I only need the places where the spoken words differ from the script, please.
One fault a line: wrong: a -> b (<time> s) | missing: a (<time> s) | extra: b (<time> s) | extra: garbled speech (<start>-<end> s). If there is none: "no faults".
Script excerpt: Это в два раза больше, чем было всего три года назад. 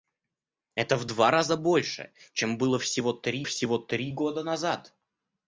extra: всего три (3.4 s)